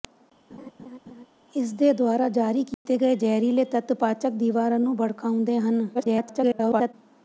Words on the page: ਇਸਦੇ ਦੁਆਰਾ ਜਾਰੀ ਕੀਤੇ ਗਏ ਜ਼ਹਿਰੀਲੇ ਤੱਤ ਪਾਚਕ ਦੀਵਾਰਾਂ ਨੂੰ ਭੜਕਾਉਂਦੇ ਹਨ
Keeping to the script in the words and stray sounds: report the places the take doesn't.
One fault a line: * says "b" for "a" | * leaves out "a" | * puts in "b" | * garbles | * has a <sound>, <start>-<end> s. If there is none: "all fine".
* has a laugh, 0.5-1.3 s
* has a dropout, 2.7-2.9 s
* garbles